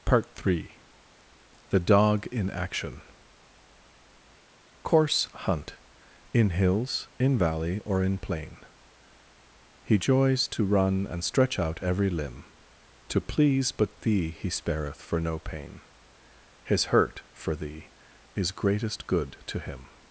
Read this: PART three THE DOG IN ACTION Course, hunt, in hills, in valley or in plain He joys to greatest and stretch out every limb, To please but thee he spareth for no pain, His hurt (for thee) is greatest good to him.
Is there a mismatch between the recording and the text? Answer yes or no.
yes